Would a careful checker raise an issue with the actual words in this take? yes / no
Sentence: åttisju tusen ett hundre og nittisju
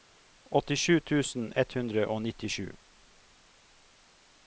no